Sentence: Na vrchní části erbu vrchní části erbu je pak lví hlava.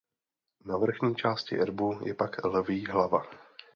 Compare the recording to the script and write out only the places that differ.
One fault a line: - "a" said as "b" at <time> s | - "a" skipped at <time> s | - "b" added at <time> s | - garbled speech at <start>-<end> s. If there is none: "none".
- "vrchní části erbu" skipped at 2.0 s